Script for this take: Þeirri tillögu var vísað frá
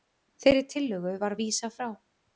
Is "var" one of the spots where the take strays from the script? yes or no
no